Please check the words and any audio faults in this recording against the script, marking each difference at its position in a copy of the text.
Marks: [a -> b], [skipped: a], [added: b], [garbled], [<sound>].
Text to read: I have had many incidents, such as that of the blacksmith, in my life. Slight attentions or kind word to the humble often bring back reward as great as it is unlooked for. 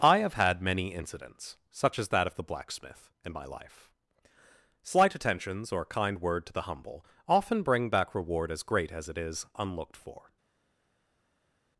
I have had many incidents, such as that of the blacksmith, in my life. Slight attentions or kind word to the humble often bring back reward as great as it is unlooked for.